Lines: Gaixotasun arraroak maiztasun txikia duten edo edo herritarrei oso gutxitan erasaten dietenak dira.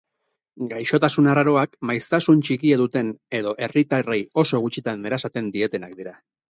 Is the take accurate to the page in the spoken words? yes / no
no